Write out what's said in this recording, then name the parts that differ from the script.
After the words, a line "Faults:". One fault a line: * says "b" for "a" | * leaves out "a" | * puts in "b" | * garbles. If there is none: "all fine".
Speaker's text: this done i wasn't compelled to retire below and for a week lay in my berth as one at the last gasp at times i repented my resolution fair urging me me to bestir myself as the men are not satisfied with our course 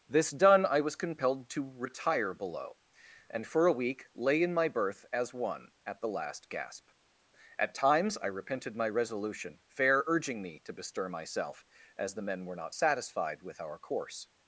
this done i was compelled to retire below and for a week lay in my berth as one at the last gasp at times i repented my resolution fair urging me to bestir myself as the men were not satisfied with our course
Faults:
* says "was" for "wasn't"
* leaves out "me"
* says "were" for "are"